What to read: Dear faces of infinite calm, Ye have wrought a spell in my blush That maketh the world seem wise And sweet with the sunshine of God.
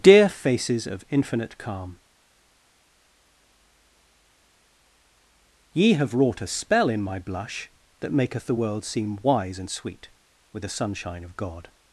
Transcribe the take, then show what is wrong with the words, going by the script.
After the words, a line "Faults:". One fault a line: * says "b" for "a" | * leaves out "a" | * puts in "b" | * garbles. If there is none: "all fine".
Dear faces of infinite calm, Ye have wrought a spell in my blush That maketh the world seem wise And sweet with the sunshine of God.
Faults:
all fine